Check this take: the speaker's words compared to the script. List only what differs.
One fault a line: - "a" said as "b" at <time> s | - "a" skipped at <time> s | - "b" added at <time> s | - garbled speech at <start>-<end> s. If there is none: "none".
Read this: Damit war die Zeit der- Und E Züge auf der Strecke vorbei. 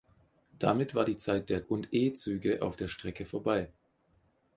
none